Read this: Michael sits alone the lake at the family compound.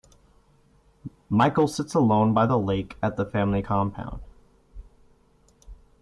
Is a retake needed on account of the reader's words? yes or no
yes